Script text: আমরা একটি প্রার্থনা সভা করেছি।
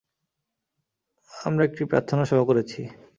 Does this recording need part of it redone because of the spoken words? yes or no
no